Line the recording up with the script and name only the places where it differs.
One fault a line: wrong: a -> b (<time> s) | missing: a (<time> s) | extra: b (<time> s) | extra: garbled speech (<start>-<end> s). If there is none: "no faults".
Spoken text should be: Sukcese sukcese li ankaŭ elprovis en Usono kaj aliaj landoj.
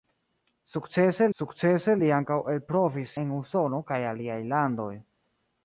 no faults